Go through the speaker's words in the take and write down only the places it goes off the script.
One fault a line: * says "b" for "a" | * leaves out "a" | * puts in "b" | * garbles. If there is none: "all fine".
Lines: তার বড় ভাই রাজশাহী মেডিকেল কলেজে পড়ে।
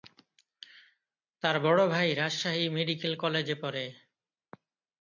all fine